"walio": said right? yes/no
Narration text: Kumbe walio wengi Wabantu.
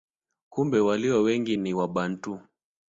yes